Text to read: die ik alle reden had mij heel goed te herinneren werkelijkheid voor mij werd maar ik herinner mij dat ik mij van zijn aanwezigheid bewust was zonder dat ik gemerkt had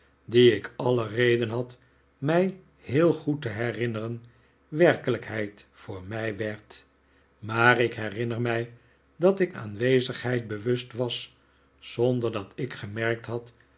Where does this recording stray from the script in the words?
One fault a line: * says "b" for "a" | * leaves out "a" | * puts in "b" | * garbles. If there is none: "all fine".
* leaves out "mij van zijn"